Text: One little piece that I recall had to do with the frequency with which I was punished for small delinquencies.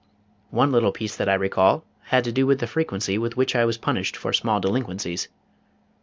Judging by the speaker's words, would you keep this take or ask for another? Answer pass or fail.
pass